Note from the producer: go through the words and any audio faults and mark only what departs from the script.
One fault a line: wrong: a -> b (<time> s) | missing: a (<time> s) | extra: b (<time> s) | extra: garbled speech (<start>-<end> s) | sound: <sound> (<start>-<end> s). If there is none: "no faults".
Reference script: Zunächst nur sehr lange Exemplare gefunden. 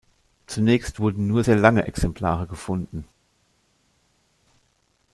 extra: wurden (1.0 s)